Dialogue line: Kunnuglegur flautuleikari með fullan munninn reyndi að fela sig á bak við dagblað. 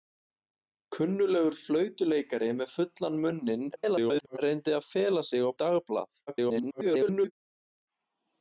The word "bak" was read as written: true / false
false